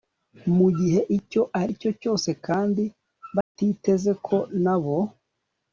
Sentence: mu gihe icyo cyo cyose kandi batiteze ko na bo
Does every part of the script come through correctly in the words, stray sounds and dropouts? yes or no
no